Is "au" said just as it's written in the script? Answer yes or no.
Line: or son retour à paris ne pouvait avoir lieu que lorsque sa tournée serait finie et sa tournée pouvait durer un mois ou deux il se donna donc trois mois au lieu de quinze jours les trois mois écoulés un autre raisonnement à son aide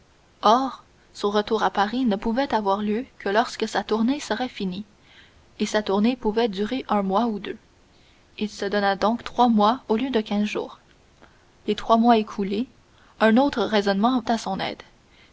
yes